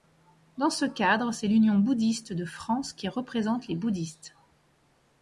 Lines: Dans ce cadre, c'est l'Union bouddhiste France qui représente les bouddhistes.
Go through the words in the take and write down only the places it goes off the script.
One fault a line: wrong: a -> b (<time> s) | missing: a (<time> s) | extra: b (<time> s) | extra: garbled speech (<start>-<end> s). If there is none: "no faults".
extra: de (2.3 s)